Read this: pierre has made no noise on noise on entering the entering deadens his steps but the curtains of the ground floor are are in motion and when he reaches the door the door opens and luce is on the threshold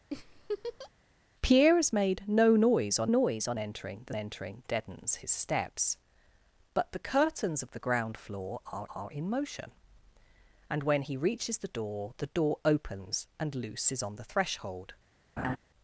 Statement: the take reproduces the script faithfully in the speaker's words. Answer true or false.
true